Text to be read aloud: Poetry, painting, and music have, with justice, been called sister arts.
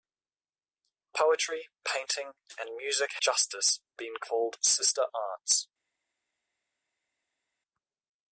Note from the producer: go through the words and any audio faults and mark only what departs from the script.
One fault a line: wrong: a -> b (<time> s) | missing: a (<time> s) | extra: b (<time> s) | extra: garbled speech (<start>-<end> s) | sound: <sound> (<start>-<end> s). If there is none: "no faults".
missing: have with (3.1 s)